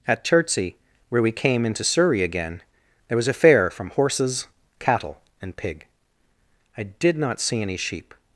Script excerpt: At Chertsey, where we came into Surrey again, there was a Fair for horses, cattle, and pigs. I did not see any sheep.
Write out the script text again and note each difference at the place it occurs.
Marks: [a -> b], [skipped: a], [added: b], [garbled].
At Chertsey, where we came into Surrey again, there was a Fair [for -> from] horses, cattle, and [pigs. -> pig] I did not see any sheep.